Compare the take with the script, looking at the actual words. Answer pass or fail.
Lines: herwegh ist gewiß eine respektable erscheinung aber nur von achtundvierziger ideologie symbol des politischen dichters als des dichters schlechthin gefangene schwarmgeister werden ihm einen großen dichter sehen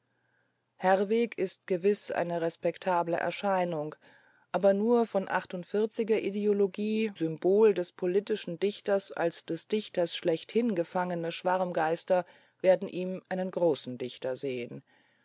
pass